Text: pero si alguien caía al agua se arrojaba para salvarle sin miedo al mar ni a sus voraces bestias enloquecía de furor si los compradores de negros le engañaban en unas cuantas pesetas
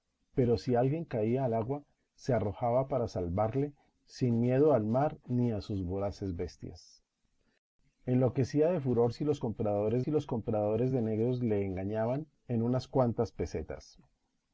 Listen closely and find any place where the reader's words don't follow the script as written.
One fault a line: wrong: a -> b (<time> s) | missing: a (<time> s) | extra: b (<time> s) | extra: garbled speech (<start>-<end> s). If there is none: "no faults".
extra: si los compradores (10.0 s)